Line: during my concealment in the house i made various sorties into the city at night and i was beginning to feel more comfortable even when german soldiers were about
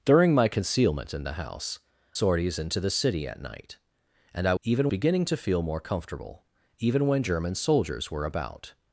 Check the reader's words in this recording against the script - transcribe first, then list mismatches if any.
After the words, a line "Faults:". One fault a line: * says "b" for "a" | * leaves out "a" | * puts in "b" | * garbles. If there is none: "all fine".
during my concealment in the house sorties into the city at night and i even beginning to feel more comfortable even when german soldiers were about
Faults:
* leaves out "i made various"
* says "even" for "was"